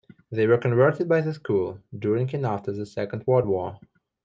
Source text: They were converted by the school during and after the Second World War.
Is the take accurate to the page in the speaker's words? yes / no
yes